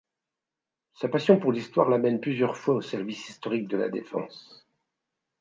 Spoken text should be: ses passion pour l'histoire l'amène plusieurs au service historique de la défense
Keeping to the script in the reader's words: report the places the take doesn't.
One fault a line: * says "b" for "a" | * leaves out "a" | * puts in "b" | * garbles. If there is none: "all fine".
* says "sa" for "ses"
* puts in "fois"